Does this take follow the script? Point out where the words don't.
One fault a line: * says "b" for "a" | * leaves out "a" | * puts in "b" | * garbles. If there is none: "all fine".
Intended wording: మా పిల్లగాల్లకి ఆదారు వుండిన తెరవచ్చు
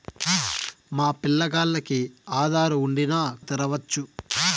all fine